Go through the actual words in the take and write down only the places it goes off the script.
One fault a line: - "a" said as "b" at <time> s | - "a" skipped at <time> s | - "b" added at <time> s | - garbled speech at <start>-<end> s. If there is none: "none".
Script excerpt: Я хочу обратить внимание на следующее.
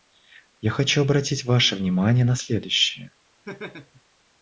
- "ваше" added at 1.4 s